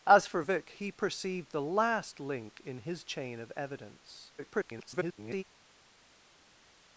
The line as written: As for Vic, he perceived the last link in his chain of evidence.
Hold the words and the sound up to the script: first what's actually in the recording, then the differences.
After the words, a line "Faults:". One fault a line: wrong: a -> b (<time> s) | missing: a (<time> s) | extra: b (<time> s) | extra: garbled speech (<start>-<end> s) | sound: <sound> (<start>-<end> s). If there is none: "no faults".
As for Vic, he perceived the last link in his chain of evidence. [garbled]
Faults:
extra: garbled speech (4.4-5.4 s)